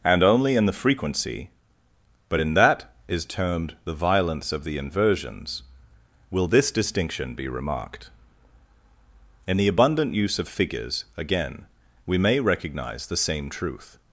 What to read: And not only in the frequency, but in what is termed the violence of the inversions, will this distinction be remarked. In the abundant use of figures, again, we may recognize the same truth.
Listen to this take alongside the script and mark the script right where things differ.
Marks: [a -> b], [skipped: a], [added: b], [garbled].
And [skipped: not] only in the frequency, but in [what -> that] is termed the violence of the inversions, will this distinction be remarked. In the abundant use of figures, again, we may recognize the same truth.